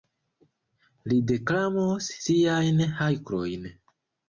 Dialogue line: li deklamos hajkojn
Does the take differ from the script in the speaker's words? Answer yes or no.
yes